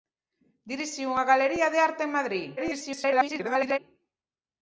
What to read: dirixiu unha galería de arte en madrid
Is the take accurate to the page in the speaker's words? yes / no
no